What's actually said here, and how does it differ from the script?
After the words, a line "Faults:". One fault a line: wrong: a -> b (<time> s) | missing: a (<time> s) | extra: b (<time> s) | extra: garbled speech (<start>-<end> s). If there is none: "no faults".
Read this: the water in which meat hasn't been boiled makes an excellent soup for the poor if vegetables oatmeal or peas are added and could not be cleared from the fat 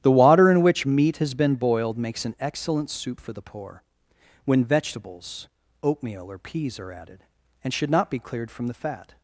the water in which meat has been boiled makes an excellent soup for the poor when vegetables oatmeal or peas are added and should not be cleared from the fat
Faults:
wrong: hasn't -> has (1.2 s)
wrong: if -> when (4.5 s)
wrong: could -> should (7.7 s)